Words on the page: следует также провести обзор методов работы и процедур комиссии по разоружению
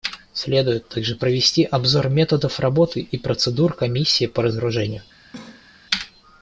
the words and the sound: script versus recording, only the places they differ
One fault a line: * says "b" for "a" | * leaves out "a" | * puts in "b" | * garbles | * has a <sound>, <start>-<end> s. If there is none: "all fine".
* has a cough, 5.3-5.8 s